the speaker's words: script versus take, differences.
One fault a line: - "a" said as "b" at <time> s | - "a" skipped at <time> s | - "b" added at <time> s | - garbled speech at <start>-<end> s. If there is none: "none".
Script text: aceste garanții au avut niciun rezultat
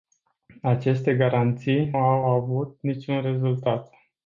none